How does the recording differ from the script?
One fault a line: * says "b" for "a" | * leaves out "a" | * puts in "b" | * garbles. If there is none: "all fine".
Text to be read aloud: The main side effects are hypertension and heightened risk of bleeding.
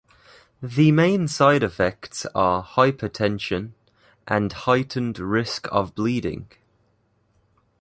all fine